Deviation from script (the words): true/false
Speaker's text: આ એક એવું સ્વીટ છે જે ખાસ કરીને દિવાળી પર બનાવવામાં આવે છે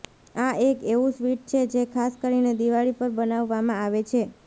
false